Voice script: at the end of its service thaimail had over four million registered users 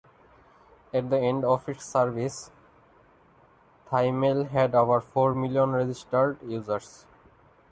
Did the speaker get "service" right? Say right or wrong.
right